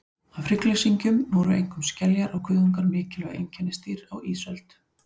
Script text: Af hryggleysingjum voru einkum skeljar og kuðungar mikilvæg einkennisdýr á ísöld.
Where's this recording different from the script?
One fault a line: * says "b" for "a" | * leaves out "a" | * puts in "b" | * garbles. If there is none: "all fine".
all fine